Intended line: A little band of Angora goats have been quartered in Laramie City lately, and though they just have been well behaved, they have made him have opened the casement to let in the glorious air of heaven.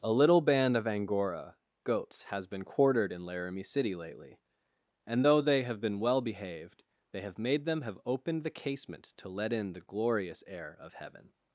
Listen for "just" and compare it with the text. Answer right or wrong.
wrong